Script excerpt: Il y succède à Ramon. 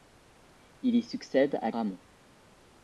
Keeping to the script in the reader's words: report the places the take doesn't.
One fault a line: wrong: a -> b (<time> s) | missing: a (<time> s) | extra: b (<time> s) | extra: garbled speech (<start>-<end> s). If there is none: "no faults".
no faults